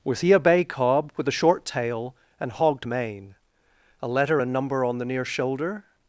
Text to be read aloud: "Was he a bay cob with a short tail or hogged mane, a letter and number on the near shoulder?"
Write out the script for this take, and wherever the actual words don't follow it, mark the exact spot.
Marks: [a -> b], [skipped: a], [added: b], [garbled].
"Was he a bay cob with a short tail [or -> and] hogged mane, a letter and number on the near shoulder?"